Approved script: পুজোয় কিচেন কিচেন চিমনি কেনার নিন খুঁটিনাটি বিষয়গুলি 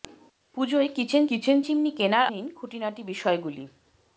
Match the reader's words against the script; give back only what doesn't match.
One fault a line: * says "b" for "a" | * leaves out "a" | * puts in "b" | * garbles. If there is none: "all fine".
all fine